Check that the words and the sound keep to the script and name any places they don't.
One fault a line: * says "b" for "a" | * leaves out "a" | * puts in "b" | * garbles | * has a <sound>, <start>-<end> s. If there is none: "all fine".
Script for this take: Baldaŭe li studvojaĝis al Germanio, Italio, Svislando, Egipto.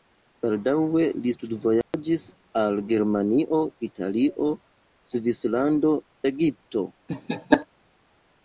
* has a dropout, 1.8-1.9 s
* has a laugh, 7.1-7.7 s